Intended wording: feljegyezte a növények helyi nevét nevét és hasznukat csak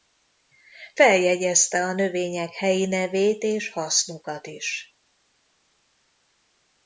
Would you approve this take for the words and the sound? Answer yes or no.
no